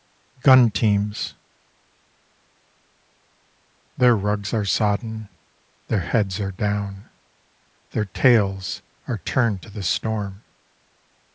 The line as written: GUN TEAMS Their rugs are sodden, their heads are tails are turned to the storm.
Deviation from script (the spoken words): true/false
true